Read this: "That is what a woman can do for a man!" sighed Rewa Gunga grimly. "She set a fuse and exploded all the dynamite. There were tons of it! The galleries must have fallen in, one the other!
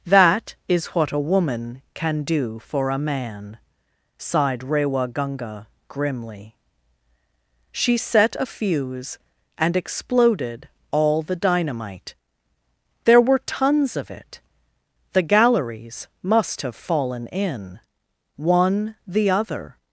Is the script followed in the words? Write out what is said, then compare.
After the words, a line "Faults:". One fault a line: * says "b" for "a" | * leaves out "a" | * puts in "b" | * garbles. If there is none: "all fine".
"That is what a woman can do for a man!" sighed Rewa Gunga grimly. "She set a fuse and exploded all the dynamite. There were tons of it! The galleries must have fallen in, one the other!
Faults:
all fine